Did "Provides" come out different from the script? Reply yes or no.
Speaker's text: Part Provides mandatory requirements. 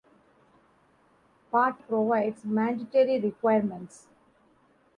no